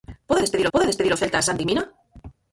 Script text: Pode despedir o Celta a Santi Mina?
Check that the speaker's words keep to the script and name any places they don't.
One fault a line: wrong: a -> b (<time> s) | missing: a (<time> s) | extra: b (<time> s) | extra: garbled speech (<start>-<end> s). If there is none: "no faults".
extra: pode despedir (0.7 s)